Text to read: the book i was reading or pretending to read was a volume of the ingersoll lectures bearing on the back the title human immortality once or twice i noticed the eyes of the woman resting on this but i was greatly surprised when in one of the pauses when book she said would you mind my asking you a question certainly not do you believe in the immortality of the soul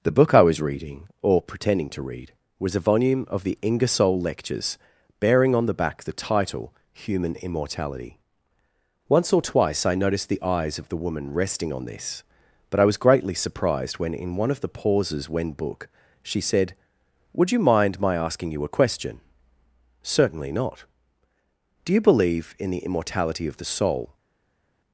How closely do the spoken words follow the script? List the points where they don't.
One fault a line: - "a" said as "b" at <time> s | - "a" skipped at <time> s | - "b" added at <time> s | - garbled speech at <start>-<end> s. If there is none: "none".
none